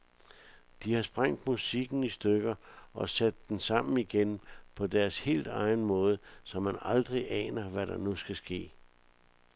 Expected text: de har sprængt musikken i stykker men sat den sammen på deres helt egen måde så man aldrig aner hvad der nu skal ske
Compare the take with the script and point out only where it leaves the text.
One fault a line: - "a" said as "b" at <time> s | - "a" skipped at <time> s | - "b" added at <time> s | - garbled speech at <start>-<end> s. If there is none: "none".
- "men" said as "og" at 2.9 s
- "igen" added at 4.0 s